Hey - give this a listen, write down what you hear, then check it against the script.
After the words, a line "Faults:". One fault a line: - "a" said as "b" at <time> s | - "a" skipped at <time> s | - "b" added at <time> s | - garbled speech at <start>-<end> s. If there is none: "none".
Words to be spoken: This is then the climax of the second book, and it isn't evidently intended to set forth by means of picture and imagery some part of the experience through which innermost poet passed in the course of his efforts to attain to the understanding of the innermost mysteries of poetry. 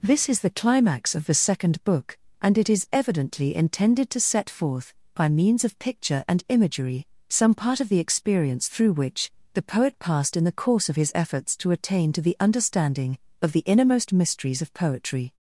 This is the climax of the second book, and it is evidently intended to set forth by means of picture and imagery some part of the experience through which the poet passed in the course of his efforts to attain to the understanding of the innermost mysteries of poetry.
Faults:
- "then" skipped at 0.4 s
- "isn't" said as "is" at 2.7 s
- "innermost" said as "the" at 9.5 s